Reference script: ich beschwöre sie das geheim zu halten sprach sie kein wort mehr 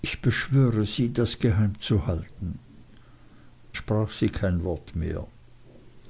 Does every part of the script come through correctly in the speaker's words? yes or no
yes